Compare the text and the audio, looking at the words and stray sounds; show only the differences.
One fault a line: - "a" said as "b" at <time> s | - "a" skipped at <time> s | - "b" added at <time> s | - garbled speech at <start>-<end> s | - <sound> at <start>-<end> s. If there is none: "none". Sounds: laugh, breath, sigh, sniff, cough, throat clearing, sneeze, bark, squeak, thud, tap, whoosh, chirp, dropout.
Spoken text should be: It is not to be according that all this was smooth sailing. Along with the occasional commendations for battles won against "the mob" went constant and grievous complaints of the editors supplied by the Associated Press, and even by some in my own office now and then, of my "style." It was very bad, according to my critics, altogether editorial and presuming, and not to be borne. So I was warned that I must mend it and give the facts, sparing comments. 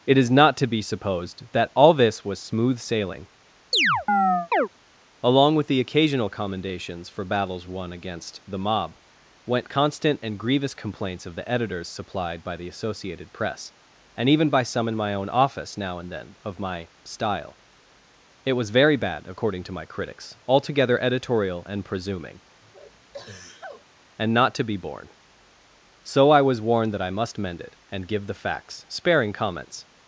- "according" said as "supposed" at 0.8 s
- chirp at 3.7-4.7 s
- sneeze at 22.6-23.8 s